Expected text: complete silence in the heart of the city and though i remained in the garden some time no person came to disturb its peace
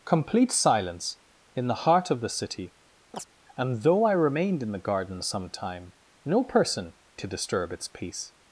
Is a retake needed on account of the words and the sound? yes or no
yes